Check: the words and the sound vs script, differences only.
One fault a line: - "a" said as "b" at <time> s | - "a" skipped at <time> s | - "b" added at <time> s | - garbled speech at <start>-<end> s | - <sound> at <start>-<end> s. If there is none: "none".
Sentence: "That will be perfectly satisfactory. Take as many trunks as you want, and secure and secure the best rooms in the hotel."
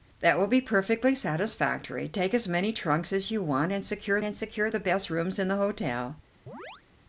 - chirp at 6.5-6.8 s